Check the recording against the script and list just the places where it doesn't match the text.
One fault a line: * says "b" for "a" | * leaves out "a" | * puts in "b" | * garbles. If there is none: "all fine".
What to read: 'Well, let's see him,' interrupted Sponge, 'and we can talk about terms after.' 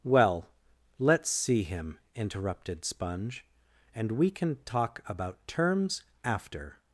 all fine